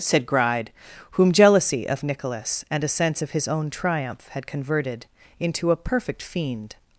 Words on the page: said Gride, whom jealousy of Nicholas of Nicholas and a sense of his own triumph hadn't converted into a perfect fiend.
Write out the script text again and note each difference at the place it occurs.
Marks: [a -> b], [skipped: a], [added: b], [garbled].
said Gride, whom jealousy of Nicholas [skipped: of Nicholas] and a sense of his own triumph [hadn't -> had] converted into a perfect fiend.